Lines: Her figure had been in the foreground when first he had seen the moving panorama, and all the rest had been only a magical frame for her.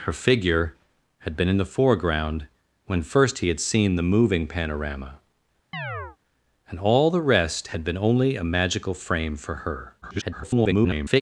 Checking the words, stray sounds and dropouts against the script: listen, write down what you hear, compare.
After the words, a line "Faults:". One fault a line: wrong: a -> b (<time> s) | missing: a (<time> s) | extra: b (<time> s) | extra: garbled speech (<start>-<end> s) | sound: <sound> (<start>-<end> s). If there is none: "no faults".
Her figure had been in the foreground when first he had seen the moving panorama, and all the rest had been only a magical frame for her. [garbled]
Faults:
sound: chirp (5.7-6.2 s)
extra: garbled speech (10.0-11.2 s)